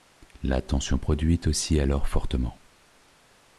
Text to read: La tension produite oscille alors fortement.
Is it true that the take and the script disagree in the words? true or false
false